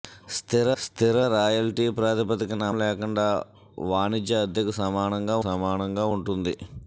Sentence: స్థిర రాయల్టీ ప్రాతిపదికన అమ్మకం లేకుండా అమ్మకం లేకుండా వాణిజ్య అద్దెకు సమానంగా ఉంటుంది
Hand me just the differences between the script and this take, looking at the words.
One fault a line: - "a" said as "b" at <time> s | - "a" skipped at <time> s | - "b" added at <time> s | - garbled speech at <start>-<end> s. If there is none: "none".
- "స్థిర" added at 0.8 s
- "అమ్మకం" skipped at 2.7 s
- "అమ్మకం లేకుండా" skipped at 3.3 s
- "సమానంగా" added at 5.5 s